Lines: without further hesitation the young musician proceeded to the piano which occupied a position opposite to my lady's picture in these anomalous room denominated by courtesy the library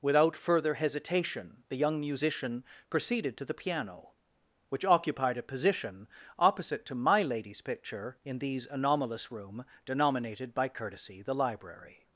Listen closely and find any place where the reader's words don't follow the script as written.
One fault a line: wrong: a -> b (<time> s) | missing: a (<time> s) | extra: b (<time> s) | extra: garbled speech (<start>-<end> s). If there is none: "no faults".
no faults